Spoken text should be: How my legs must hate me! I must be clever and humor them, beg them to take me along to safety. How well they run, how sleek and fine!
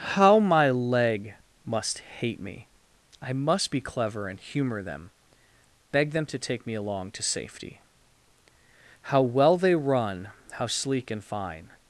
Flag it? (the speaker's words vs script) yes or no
yes